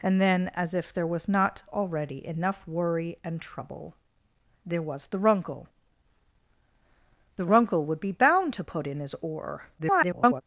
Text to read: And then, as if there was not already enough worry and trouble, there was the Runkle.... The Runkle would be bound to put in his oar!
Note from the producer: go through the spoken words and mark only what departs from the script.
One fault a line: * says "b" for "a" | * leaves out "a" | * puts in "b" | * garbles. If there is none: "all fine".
* garbles